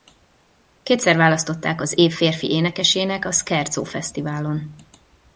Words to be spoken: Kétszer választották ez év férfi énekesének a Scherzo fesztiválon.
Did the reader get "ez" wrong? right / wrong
wrong